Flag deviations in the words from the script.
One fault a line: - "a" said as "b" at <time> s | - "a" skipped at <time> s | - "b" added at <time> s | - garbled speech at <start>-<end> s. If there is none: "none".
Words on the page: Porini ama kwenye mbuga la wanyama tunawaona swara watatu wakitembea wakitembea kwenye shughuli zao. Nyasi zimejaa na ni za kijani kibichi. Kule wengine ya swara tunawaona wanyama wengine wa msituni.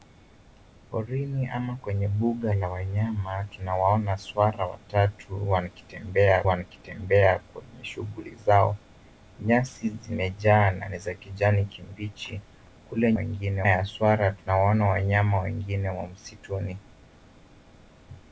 none